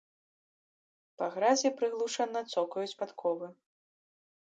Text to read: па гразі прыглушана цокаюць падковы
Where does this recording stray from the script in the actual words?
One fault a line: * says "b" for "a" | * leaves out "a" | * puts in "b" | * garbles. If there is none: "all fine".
all fine